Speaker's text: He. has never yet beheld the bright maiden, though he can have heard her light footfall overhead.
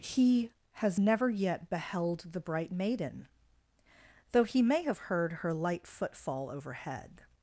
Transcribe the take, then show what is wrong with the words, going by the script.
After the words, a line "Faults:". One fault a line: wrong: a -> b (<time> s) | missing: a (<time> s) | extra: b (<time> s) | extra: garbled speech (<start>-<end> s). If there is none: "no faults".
He. has never yet beheld the bright maiden, though he may have heard her light footfall overhead.
Faults:
wrong: can -> may (4.6 s)